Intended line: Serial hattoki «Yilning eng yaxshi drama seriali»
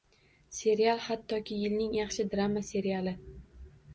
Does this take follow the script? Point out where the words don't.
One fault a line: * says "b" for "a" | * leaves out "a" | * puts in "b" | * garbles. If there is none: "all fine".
* leaves out "eng"